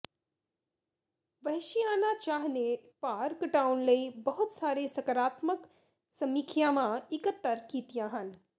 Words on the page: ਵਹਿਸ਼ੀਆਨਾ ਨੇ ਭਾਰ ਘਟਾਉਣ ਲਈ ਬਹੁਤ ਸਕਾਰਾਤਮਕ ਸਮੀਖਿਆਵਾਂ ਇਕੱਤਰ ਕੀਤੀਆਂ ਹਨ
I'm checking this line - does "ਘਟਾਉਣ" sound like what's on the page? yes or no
yes